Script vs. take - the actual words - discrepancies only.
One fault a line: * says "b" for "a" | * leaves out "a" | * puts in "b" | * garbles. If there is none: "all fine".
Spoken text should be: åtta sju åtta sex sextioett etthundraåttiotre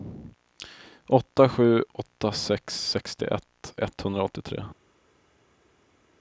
all fine